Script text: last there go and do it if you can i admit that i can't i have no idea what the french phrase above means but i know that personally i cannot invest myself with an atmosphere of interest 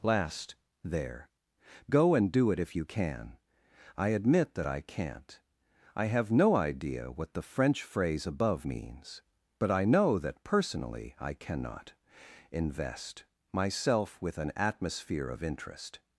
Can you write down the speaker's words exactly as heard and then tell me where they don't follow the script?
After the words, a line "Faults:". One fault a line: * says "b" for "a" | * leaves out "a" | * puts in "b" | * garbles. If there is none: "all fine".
last there go and do it if you can i admit that i can't i have no idea what the french phrase above means but i know that personally i cannot invest myself with an atmosphere of interest
Faults:
all fine